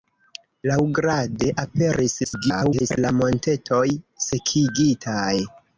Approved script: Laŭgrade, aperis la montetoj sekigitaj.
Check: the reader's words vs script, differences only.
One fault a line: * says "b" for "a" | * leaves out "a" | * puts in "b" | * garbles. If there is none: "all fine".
* garbles